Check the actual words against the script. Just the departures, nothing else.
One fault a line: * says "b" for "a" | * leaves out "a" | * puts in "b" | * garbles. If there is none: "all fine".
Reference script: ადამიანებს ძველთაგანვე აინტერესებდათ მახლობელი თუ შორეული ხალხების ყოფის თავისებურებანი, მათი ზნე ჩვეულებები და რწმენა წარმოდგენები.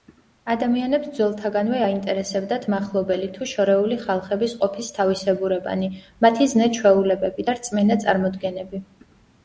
all fine